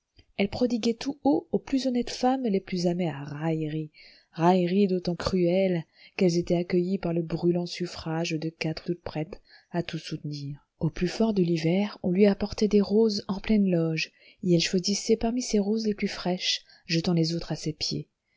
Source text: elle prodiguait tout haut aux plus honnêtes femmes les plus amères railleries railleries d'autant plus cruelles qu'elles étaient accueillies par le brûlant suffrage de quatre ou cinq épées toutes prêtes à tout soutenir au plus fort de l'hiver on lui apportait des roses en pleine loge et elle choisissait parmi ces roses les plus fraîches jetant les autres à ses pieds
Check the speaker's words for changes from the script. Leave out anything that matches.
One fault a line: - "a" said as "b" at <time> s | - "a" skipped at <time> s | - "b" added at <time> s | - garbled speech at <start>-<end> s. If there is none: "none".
- "plus" skipped at 5.1 s
- "cinq épées" skipped at 8.9 s